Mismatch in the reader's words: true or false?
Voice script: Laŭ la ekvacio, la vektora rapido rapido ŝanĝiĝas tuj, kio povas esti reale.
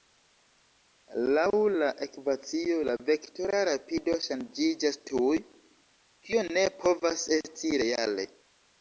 true